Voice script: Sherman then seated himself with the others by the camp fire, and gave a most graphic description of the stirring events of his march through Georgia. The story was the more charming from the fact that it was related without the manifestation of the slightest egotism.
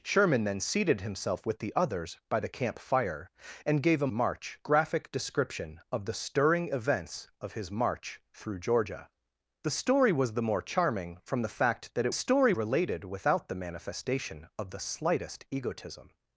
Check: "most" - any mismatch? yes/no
yes